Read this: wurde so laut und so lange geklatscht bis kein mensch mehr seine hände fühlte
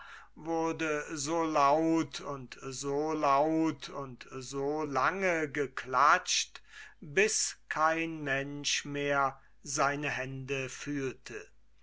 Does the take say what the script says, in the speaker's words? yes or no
no